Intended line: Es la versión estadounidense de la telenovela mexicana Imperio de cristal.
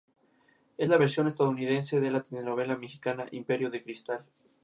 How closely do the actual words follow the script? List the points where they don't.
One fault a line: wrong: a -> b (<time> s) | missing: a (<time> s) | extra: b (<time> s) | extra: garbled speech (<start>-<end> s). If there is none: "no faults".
no faults